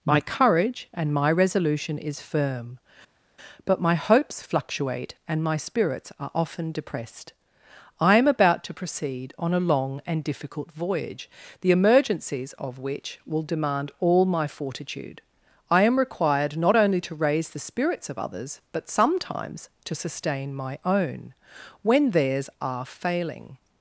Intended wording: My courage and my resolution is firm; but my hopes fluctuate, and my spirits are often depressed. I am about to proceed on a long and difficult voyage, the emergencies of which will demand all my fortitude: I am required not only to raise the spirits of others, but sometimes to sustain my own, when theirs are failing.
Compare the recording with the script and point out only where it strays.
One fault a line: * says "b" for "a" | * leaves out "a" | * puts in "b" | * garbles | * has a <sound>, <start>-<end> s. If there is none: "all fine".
all fine